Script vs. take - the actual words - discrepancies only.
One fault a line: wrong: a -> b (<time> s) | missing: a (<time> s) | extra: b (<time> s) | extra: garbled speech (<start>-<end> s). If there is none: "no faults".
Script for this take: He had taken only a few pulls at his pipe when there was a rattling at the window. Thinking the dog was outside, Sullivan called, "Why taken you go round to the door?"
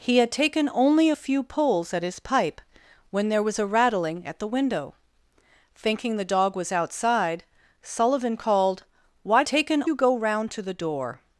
no faults